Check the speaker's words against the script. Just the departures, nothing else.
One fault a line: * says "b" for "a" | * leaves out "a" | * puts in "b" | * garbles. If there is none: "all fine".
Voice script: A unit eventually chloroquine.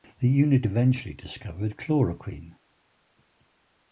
* says "The" for "A"
* puts in "discovered"